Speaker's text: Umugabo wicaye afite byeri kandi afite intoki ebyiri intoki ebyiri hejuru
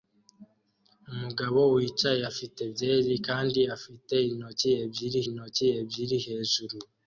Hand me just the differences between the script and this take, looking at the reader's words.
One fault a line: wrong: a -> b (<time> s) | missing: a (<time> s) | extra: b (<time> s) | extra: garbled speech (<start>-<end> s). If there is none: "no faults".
no faults